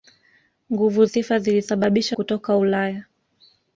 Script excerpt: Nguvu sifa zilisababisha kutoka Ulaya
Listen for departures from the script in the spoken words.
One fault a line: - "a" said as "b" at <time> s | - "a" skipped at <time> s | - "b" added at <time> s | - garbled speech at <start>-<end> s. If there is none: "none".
none